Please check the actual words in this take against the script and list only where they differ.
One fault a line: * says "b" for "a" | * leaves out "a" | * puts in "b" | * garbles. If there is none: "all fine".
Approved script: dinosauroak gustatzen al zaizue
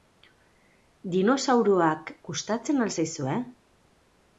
all fine